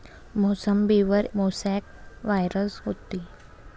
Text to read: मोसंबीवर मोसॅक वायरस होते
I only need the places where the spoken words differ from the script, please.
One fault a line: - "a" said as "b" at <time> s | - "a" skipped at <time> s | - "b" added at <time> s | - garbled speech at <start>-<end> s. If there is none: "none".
none